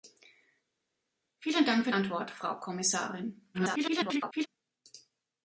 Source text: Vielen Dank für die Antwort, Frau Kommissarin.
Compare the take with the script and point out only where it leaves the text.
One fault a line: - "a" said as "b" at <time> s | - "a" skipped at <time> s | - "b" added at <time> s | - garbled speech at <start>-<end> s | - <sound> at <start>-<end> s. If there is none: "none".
- "die" skipped at 1.9 s
- garbled speech at 3.5-4.5 s